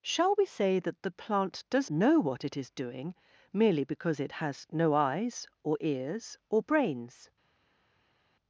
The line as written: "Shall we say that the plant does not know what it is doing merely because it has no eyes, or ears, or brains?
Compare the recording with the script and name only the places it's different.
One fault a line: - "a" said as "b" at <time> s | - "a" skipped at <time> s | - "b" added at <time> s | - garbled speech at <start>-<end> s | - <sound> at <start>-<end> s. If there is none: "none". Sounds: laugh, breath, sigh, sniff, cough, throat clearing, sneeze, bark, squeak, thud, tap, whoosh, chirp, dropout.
- "not" skipped at 1.9 s